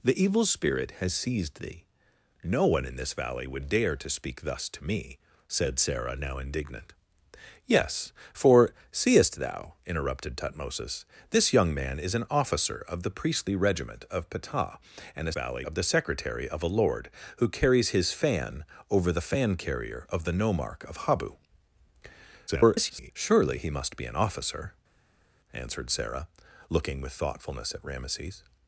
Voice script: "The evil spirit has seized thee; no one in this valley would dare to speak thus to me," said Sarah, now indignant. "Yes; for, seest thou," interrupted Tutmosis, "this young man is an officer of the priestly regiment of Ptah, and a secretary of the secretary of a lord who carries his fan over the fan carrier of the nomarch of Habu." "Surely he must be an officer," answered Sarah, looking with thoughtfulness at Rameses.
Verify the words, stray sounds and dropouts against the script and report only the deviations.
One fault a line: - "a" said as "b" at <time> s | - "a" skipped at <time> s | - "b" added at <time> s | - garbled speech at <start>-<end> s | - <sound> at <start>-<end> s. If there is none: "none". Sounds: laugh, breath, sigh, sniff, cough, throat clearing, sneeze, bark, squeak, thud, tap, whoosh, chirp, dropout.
- "secretary" said as "valley" at 15.3 s
- garbled speech at 22.5-23.1 s